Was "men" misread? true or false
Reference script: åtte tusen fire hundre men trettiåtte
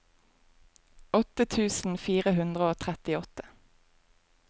true